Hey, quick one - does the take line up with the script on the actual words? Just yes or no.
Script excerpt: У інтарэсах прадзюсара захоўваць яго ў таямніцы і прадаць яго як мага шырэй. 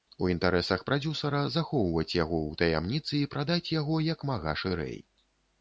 yes